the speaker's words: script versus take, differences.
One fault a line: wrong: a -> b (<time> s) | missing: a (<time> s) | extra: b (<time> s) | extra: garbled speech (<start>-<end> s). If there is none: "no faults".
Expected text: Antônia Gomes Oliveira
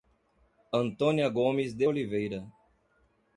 extra: de (1.8 s)